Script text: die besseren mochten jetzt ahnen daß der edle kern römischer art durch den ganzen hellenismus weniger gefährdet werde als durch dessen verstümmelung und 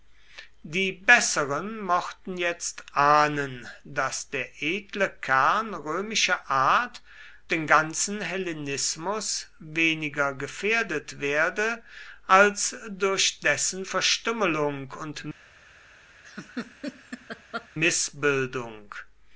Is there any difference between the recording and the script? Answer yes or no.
yes